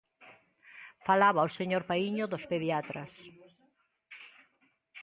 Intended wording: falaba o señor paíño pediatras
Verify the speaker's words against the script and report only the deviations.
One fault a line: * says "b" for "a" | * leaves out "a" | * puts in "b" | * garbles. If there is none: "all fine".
* puts in "dos"